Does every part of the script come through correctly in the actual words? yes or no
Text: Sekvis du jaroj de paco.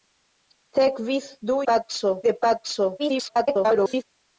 no